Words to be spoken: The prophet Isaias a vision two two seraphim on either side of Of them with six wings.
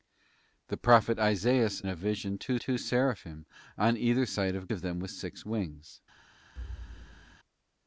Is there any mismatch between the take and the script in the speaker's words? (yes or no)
no